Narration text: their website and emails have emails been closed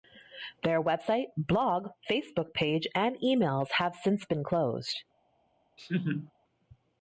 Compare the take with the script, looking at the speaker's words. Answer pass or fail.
fail